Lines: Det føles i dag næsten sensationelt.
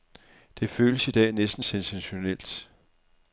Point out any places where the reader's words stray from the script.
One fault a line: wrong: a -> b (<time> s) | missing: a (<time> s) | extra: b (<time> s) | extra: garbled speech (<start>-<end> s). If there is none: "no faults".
no faults